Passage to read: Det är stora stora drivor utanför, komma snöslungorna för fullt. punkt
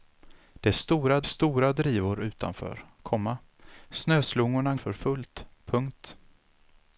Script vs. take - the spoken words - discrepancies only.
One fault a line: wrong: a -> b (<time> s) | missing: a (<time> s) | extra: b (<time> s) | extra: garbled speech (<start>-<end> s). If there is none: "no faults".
no faults